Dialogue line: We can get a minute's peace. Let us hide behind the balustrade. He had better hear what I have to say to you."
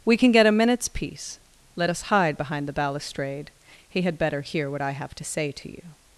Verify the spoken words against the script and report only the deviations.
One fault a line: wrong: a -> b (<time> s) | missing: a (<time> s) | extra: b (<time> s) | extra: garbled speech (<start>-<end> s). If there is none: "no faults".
no faults